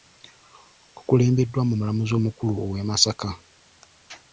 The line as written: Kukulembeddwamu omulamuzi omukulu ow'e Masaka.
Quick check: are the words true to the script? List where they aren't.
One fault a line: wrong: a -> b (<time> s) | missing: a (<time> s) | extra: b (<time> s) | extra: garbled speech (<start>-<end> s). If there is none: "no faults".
no faults